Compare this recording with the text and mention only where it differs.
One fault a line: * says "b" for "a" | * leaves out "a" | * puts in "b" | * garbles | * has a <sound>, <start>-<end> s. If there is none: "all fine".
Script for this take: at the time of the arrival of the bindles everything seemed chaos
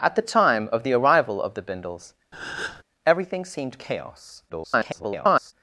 * has a breath, 2.3-2.8 s
* garbles